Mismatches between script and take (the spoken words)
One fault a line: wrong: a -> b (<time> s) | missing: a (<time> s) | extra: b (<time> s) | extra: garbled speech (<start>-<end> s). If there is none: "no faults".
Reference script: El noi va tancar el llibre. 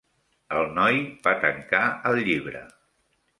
no faults